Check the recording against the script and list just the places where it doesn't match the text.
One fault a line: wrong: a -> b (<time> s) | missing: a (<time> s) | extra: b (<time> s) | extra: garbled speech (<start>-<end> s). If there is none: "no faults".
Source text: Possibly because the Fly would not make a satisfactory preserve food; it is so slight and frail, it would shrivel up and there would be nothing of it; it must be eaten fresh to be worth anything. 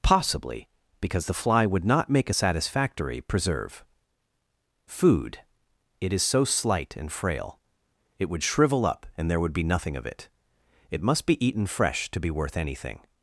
no faults